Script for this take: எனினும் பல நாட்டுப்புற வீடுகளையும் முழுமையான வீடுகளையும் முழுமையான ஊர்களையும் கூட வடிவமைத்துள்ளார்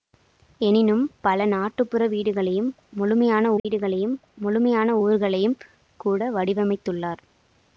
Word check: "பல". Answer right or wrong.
right